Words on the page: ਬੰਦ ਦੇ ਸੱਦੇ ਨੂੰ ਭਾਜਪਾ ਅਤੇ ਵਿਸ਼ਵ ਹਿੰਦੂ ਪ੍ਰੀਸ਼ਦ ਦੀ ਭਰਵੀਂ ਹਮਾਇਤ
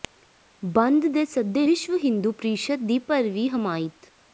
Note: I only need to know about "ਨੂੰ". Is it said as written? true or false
false